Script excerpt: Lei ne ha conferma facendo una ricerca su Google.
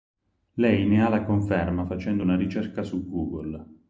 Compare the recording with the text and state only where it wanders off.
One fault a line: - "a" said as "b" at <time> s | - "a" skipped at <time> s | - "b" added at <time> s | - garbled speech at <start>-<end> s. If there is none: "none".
- "la" added at 1.1 s